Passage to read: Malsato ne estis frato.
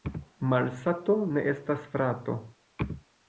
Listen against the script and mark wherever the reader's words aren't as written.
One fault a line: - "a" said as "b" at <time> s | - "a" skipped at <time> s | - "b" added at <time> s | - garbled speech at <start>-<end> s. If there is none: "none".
- "estis" said as "estas" at 1.5 s